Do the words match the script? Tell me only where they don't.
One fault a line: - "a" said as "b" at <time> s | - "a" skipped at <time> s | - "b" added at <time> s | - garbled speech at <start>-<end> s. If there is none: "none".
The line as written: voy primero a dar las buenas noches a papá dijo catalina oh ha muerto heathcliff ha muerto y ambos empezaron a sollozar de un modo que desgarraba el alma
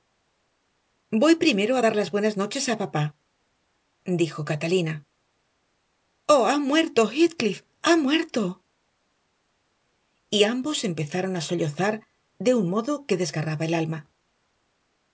none